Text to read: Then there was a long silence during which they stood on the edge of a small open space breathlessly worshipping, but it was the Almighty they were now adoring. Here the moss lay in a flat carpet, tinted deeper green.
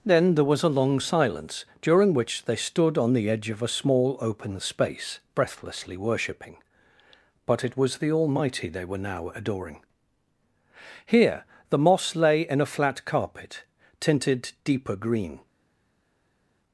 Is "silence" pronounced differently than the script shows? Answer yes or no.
no